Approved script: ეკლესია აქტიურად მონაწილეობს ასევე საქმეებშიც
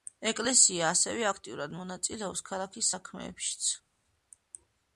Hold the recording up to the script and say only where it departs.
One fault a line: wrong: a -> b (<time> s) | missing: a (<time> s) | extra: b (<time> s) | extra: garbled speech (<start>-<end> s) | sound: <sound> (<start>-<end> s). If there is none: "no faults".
extra: ასევე (0.9 s)
wrong: ასევე -> ქალაქის (2.5 s)